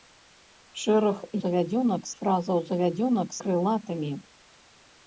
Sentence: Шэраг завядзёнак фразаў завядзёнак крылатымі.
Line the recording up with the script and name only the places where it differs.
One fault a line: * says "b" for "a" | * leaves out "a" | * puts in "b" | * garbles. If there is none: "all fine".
all fine